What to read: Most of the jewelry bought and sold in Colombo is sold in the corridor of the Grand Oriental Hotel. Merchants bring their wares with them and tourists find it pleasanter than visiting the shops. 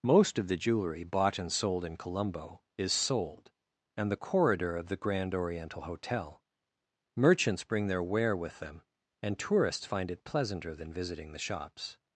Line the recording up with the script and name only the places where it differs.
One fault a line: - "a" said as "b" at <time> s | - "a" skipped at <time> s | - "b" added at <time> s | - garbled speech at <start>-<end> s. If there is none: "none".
- "in" said as "and" at 4.0 s
- "wares" said as "ware" at 8.0 s